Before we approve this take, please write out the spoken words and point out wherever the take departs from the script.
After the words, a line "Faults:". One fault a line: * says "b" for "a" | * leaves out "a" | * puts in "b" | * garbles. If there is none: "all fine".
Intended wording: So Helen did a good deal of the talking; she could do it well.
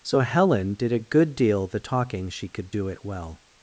So Helen did a good deal the talking; she could do it well.
Faults:
* leaves out "of"